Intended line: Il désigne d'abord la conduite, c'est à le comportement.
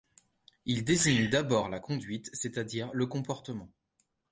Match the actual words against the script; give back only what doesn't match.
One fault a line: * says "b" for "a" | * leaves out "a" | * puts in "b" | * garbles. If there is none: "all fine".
* puts in "dire"